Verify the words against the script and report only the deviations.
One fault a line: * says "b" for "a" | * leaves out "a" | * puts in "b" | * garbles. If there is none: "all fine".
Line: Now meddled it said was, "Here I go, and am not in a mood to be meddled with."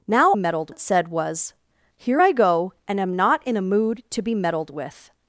all fine